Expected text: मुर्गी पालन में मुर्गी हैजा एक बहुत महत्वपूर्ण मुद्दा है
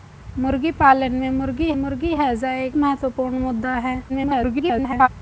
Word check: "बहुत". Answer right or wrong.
wrong